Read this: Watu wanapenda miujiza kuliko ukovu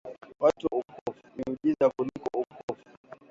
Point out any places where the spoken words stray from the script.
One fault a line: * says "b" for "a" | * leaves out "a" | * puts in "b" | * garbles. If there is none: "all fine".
* says "ukovu" for "wanapenda"